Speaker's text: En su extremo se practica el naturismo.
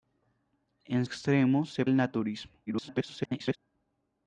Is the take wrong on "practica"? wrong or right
wrong